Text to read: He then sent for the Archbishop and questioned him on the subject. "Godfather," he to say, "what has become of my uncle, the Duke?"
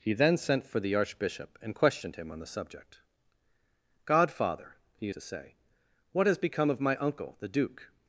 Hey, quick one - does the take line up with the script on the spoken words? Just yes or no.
yes